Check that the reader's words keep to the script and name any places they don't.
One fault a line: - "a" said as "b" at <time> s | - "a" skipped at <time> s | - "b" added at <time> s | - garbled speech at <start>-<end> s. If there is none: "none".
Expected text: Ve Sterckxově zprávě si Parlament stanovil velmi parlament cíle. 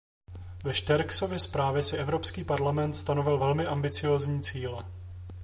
- "Evropský" added at 2.0 s
- "parlament" said as "ambiciózní" at 3.7 s